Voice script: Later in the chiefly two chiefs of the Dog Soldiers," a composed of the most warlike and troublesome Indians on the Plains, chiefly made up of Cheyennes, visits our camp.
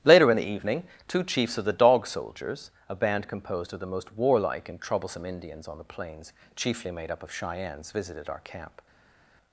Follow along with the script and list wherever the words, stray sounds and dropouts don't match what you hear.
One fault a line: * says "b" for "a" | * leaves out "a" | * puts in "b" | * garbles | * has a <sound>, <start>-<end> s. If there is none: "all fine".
* says "evening" for "chiefly"
* puts in "band"
* says "visited" for "visits"